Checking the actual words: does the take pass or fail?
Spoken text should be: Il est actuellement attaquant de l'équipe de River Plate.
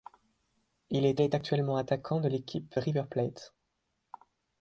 fail